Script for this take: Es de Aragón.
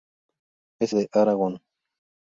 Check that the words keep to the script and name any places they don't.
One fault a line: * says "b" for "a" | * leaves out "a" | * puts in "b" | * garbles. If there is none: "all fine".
all fine